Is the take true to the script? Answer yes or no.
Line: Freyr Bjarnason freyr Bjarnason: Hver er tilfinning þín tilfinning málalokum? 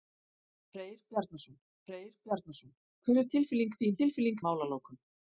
yes